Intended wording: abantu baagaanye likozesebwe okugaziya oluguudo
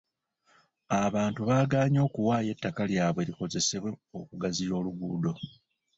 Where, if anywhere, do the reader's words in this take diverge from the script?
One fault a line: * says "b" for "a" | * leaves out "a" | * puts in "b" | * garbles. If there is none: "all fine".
* puts in "okuwaayo ettaka lyabwe"